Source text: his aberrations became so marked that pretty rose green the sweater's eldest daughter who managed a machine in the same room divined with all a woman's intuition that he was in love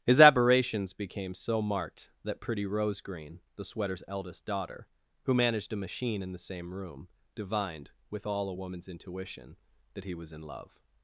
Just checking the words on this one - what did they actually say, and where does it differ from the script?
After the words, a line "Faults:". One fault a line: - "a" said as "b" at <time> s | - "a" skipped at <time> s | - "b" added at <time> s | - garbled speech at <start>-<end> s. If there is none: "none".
his aberrations became so marked that pretty rose green the sweater's eldest daughter who managed a machine in the same room divined with all a woman's intuition that he was in love
Faults:
none